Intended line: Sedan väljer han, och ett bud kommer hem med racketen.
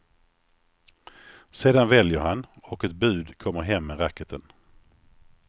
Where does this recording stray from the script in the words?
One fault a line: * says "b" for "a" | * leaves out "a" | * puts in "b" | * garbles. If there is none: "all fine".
all fine